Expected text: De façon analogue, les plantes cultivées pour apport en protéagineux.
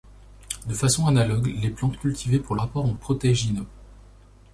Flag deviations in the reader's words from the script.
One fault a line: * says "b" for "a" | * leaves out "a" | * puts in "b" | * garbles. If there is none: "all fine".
all fine